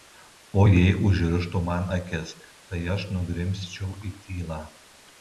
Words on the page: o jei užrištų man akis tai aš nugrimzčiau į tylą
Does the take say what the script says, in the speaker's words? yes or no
yes